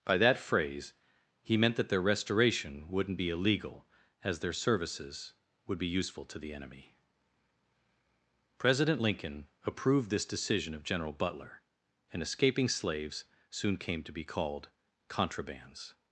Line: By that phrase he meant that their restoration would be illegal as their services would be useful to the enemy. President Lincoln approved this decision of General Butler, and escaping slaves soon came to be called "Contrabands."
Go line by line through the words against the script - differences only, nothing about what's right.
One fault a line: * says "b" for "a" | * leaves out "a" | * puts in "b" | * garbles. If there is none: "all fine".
* says "wouldn't" for "would"